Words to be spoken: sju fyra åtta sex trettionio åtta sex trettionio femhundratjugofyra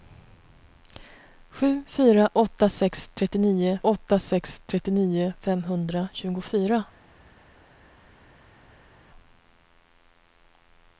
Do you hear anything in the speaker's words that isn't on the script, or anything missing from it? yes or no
no